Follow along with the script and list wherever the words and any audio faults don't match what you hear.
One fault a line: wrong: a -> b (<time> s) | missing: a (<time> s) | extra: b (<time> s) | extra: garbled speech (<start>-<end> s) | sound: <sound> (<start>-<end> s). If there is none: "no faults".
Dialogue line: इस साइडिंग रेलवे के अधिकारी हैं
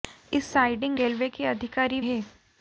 no faults